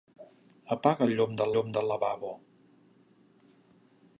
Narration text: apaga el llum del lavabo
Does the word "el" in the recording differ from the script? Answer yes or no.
no